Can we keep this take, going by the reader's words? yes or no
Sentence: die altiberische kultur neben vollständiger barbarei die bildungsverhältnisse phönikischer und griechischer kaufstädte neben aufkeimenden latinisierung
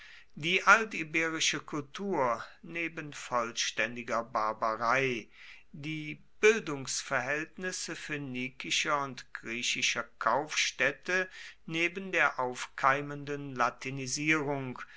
no